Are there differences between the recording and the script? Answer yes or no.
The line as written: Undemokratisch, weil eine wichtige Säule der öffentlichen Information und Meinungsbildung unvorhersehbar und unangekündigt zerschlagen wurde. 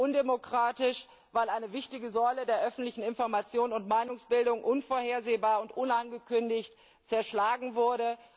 no